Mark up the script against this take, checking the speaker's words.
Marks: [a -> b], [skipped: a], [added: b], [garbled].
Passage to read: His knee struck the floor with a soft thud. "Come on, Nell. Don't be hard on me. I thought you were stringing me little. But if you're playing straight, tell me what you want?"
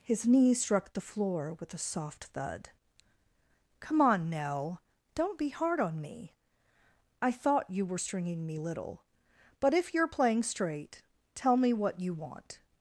His knee struck the floor with a soft thud. "Come on, Nell. Don't be hard on me. I thought you were stringing me little. But if you're playing straight, tell me what you want?"